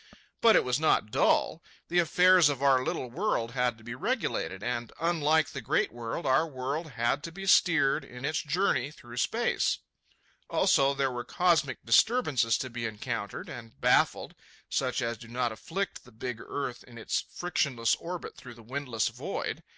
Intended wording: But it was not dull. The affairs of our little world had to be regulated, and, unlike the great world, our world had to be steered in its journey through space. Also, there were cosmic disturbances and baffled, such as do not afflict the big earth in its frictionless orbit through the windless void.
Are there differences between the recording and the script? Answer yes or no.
yes